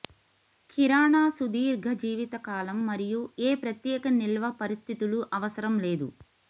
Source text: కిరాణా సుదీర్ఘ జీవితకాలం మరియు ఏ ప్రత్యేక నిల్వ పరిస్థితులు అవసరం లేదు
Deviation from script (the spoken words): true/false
false